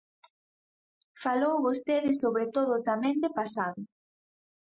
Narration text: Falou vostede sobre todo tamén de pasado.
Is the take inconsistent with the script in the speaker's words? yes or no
no